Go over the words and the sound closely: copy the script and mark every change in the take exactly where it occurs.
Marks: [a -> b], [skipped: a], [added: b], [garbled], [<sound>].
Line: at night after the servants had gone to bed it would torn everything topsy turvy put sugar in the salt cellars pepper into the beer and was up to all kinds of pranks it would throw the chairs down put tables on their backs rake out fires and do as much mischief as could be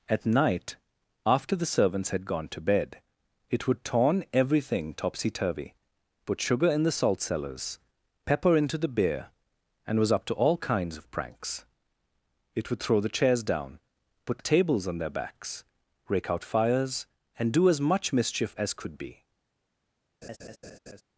at night after the servants had gone to bed it would torn everything topsy turvy put sugar in the salt cellars pepper into the beer and was up to all kinds of pranks it would throw the chairs down put tables on their backs rake out fires and do as much mischief as could be [laugh]